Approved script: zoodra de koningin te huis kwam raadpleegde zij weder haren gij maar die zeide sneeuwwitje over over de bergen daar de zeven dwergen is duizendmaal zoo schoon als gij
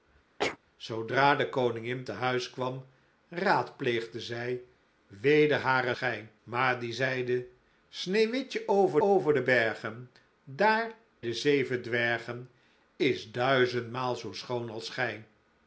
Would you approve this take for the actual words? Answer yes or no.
yes